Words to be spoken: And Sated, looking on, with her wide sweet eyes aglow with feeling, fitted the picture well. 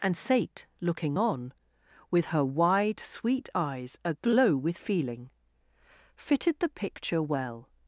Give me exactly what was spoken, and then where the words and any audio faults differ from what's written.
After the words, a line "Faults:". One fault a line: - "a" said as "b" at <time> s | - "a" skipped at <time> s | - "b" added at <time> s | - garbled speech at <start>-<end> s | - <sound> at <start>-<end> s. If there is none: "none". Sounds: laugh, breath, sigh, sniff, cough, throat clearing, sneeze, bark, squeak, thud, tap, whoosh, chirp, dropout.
And Sate, looking on, with her wide sweet eyes aglow with feeling, fitted the picture well.
Faults:
- "Sated" said as "Sate" at 0.2 s